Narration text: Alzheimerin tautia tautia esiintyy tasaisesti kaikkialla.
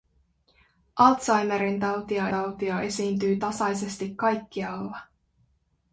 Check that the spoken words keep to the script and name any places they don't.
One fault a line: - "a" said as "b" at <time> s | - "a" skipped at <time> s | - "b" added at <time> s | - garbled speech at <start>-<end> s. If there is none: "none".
none